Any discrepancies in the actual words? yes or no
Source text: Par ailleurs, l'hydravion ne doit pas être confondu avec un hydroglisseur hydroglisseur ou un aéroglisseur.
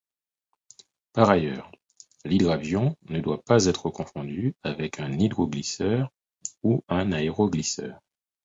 yes